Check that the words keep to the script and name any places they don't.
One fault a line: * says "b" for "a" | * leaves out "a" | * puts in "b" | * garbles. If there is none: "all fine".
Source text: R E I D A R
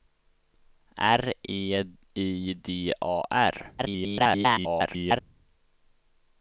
* garbles